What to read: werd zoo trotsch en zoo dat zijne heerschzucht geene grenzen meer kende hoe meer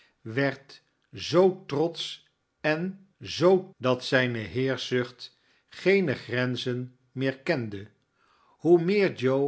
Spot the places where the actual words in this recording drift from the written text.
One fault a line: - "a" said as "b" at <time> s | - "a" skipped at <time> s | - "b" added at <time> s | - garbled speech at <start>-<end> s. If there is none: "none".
none